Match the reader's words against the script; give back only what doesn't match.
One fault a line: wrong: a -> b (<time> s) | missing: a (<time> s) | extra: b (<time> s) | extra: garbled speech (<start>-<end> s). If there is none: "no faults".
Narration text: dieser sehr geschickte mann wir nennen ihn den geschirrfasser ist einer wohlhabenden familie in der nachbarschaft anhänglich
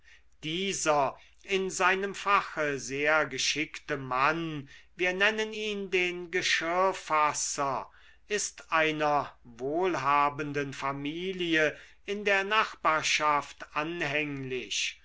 extra: in seinem fache (1.4 s)